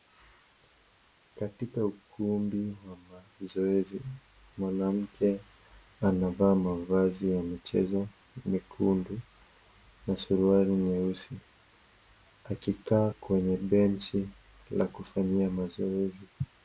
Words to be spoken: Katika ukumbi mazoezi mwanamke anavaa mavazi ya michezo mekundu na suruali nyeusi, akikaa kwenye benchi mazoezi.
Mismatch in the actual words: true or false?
true